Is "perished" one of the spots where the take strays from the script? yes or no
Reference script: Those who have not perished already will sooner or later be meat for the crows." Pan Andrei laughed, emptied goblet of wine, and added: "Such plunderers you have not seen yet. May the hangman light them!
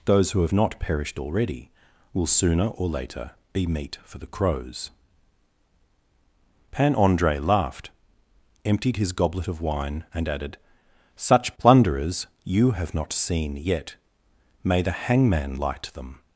no